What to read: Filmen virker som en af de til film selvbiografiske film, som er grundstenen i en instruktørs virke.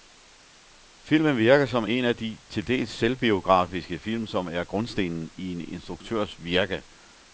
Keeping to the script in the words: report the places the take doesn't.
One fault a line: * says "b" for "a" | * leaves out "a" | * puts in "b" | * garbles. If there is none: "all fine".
* says "dels" for "film"